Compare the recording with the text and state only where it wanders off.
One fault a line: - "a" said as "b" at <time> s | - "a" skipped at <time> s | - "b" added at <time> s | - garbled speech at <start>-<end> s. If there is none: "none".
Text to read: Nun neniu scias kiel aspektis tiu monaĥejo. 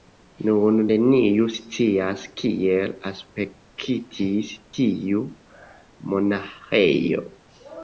none